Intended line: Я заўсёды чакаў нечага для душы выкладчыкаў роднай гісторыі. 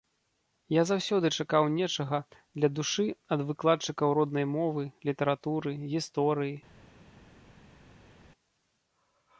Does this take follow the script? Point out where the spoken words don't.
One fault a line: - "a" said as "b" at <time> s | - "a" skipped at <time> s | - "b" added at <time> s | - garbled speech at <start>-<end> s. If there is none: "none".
- "ад" added at 3.4 s
- "мовы літаратуры" added at 4.6 s